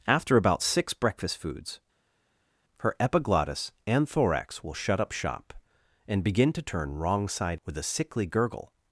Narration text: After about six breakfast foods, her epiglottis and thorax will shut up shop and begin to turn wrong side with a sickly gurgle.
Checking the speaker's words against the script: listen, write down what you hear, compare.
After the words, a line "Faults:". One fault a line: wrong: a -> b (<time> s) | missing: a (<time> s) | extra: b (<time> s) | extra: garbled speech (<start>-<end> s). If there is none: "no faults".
After about six breakfast foods, her epiglottis and thorax will shut up shop and begin to turn wrong side with a sickly gurgle.
Faults:
no faults